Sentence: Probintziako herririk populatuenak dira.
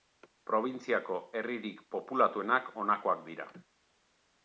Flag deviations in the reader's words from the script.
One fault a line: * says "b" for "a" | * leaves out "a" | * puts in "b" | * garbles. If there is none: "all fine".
* puts in "honakoak"